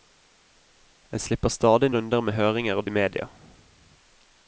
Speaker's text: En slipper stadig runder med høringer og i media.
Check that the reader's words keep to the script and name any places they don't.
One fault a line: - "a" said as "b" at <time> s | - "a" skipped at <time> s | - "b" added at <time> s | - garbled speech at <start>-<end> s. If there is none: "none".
none